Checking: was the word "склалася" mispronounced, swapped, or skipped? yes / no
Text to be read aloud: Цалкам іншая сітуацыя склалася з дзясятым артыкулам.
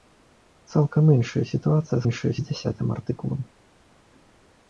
yes